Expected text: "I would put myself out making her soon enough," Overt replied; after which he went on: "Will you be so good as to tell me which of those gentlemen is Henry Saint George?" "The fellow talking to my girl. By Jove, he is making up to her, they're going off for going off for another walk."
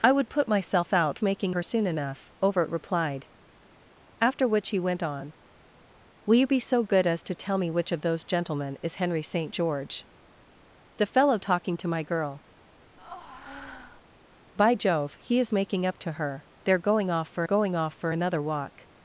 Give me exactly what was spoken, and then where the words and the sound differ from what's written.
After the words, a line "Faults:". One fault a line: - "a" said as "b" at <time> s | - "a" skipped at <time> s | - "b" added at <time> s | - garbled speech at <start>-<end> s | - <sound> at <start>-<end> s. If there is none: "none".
"I would put myself out making her soon enough," Overt replied; after which he went on: "Will you be so good as to tell me which of those gentlemen is Henry Saint George?" "The fellow talking to my girl. By Jove, he is making up to her, they're going off for going off for another walk."
Faults:
- breath at 13.0-14.0 s